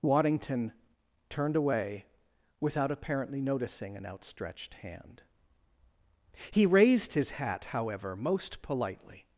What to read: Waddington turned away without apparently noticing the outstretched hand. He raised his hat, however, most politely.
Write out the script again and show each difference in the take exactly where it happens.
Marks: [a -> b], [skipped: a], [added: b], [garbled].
Waddington turned away without apparently noticing [the -> an] outstretched hand. He raised his hat, however, most politely.